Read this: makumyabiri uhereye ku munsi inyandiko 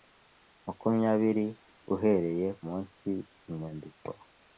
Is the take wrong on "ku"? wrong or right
wrong